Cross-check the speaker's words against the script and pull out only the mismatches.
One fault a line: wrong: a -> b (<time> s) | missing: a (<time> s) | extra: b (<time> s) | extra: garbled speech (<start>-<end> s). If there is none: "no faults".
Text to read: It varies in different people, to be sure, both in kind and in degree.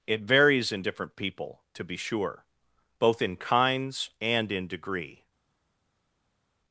wrong: kind -> kinds (3.3 s)